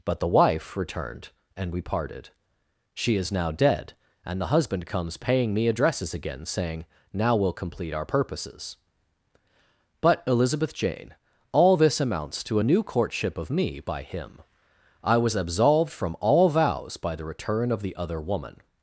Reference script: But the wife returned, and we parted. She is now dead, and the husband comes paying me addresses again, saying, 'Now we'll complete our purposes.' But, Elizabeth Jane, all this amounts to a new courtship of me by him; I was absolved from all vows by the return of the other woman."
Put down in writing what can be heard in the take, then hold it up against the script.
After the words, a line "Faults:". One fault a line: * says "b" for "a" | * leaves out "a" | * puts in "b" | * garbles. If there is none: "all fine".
But the wife returned, and we parted. She is now dead, and the husband comes paying me addresses again, saying, 'Now we'll complete our purposes.' But, Elizabeth Jane, all this amounts to a new courtship of me by him; I was absolved from all vows by the return of the other woman."
Faults:
all fine